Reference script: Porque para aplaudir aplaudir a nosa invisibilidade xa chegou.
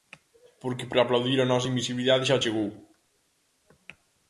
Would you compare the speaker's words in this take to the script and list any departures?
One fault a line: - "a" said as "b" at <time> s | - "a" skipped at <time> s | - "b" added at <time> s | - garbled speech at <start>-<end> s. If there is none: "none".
- "aplaudir" skipped at 1.4 s